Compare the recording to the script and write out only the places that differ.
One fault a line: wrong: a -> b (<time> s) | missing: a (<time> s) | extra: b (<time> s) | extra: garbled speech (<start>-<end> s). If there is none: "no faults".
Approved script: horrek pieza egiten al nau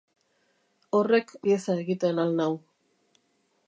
no faults